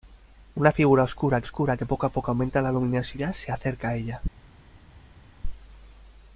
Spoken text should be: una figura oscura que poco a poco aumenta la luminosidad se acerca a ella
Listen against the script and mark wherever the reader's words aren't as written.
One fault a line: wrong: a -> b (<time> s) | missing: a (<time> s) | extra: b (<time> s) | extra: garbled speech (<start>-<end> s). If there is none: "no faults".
extra: oscura (1.4 s)